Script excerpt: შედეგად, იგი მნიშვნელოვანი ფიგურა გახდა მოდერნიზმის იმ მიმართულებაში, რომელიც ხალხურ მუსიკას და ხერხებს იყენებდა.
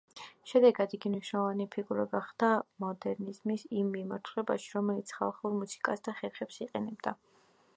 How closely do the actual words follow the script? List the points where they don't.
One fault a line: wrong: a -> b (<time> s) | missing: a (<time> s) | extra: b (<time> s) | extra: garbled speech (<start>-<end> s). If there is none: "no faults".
no faults